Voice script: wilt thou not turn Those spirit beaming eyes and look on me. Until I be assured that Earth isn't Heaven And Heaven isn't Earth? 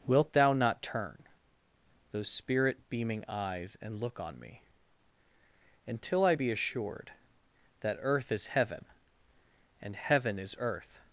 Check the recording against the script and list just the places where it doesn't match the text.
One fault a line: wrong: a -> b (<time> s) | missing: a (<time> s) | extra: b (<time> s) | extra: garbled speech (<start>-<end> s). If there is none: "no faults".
wrong: isn't -> is (8.3 s)
wrong: isn't -> is (10.4 s)